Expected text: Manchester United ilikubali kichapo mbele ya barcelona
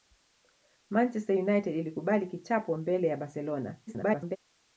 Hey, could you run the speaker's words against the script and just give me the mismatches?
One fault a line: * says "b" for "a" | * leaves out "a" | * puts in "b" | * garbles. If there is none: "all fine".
* garbles